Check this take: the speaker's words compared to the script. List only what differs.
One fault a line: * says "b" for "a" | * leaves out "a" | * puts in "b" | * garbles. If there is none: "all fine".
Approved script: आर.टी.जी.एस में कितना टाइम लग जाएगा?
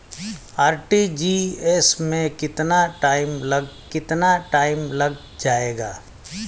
* puts in "कितना टाइम लग"